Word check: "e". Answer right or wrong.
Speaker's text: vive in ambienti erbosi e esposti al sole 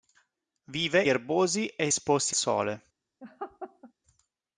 right